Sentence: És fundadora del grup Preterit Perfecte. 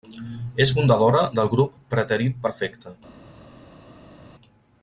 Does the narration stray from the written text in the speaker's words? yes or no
no